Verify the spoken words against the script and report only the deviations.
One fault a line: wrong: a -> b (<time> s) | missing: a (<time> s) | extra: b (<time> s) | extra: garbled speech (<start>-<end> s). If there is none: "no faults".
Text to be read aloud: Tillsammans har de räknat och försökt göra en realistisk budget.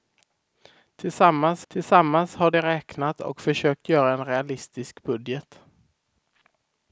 extra: tillsammans (1.7 s)